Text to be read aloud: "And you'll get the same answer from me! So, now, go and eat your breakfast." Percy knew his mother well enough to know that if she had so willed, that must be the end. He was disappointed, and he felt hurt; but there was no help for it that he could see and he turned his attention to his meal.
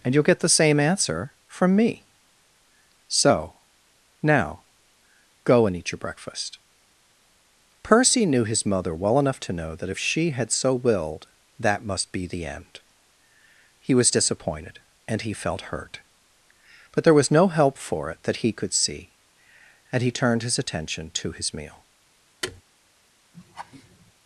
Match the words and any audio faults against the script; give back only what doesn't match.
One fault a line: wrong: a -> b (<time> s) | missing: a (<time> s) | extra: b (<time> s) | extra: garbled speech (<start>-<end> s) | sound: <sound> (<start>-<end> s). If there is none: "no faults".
sound: thud (22.4-22.6 s)
sound: laugh (23.3-24.1 s)